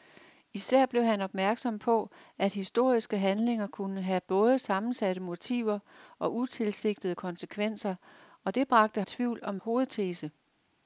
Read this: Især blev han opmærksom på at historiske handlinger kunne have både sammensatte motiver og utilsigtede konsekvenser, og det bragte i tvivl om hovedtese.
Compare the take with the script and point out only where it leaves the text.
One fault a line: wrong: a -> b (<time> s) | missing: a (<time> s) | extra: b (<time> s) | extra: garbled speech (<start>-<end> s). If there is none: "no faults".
no faults